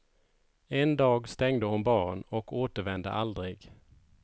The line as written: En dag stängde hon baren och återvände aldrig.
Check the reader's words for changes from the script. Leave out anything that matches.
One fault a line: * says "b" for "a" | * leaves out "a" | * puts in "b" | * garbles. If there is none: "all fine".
all fine